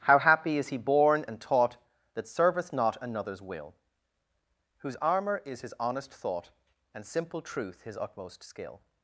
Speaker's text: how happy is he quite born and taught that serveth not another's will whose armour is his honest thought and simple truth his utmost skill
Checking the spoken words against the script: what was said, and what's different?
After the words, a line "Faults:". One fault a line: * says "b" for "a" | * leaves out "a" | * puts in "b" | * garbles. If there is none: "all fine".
how happy is he born and taught that serveth not another's will whose armour is his honest thought and simple truth his utmost skill
Faults:
* leaves out "quite"